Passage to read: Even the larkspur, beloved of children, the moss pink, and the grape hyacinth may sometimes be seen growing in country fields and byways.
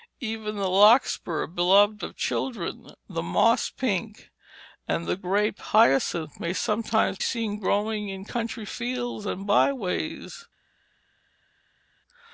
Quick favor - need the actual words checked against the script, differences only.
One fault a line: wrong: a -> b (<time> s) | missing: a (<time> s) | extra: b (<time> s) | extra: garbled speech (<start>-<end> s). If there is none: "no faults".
missing: be (7.2 s)